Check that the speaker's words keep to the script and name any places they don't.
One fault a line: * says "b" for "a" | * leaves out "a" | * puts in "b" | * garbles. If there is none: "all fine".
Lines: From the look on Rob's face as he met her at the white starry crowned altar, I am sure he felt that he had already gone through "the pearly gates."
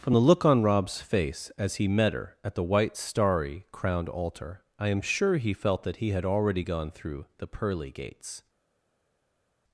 all fine